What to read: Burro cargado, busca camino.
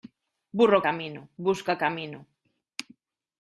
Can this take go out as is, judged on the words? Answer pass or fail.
fail